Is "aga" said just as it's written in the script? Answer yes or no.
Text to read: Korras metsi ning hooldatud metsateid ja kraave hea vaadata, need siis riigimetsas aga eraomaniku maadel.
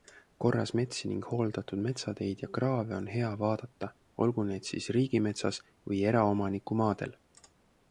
no